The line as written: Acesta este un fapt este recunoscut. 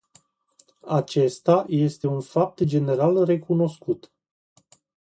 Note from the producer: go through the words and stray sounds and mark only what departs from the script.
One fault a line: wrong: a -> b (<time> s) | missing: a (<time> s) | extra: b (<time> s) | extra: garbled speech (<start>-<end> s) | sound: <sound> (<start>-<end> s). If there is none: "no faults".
wrong: este -> general (2.7 s)